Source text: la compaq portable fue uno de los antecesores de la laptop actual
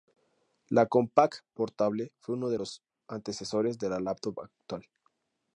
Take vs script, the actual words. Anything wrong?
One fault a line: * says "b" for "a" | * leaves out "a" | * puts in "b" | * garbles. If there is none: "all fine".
all fine